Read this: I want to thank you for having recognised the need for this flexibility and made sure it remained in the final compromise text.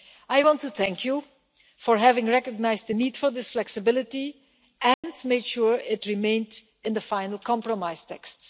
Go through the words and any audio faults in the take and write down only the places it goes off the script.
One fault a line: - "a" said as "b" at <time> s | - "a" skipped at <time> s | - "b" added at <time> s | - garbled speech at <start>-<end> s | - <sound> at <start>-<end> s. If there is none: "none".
- dropout at 4.9-5.0 s